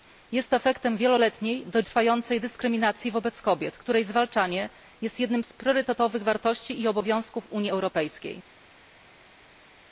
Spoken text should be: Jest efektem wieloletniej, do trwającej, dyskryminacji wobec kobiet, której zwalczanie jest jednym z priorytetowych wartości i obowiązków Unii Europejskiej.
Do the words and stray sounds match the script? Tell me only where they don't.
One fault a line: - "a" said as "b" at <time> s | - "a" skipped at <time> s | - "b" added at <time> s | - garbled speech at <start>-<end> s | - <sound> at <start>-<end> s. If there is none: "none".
none